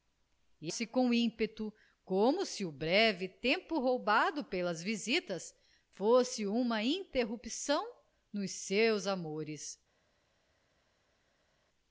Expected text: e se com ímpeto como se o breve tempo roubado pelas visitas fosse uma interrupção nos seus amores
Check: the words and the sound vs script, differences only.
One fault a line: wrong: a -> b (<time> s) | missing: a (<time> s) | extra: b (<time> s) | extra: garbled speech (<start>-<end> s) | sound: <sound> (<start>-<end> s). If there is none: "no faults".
no faults